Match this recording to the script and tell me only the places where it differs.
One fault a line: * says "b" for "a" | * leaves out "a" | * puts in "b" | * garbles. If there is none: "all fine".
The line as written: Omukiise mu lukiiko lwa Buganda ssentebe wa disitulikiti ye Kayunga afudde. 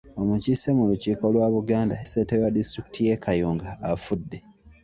all fine